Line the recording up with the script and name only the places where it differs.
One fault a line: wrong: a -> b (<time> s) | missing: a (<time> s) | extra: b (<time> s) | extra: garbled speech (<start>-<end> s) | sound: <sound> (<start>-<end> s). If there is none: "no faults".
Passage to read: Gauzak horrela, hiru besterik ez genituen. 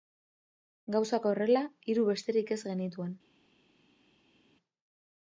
no faults